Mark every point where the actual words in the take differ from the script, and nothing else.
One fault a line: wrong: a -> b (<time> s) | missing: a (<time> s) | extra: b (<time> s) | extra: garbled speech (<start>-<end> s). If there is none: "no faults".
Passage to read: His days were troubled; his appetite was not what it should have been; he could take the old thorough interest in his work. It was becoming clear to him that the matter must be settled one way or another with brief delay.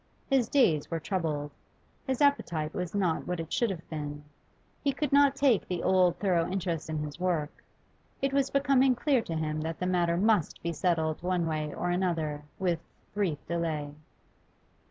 extra: not (5.1 s)